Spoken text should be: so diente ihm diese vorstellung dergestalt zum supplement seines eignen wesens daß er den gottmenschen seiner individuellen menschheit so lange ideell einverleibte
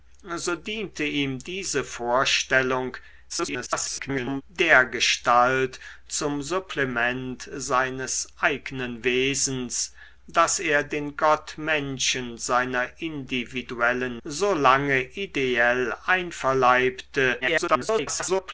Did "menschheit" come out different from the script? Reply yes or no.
yes